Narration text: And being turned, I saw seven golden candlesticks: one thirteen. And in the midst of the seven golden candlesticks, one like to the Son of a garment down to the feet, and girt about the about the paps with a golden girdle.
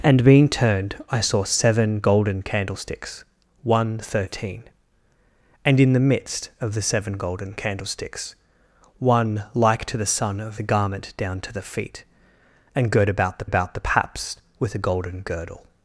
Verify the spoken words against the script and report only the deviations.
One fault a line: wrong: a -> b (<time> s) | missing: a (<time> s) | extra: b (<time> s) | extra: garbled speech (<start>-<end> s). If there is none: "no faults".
no faults